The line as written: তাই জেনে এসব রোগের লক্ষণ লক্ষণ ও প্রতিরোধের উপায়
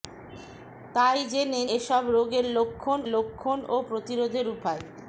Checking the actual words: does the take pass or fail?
pass